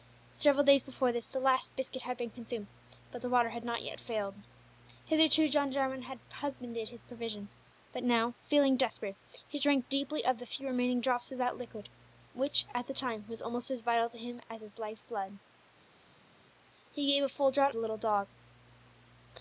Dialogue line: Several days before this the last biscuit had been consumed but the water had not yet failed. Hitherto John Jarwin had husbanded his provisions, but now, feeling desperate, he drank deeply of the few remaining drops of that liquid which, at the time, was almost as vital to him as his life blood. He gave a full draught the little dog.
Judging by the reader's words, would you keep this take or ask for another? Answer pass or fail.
pass